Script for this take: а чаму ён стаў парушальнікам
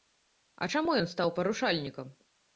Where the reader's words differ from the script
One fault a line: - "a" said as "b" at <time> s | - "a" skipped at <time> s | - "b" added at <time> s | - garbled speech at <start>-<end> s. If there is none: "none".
none